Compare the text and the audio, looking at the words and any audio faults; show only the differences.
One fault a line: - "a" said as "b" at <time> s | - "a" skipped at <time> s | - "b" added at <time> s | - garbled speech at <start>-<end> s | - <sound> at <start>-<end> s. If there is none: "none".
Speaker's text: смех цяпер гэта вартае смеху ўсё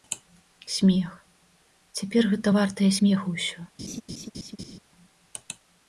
- laugh at 3.8-4.8 s